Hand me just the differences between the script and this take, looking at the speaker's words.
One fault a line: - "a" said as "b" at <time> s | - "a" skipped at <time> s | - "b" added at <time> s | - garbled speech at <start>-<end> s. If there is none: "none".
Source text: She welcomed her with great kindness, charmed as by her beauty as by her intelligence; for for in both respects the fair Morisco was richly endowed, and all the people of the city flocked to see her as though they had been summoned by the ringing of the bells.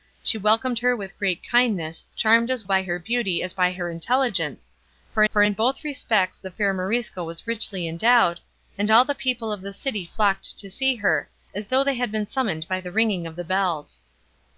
none